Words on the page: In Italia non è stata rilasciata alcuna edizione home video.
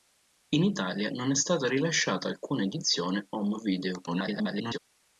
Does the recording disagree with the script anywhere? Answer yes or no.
yes